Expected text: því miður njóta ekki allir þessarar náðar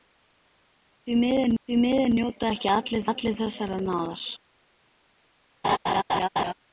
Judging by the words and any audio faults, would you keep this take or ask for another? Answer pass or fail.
fail